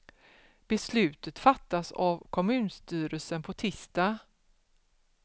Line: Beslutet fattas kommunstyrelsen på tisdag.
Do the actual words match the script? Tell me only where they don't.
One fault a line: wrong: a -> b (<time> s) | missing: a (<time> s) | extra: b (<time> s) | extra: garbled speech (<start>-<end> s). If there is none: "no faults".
extra: av (1.9 s)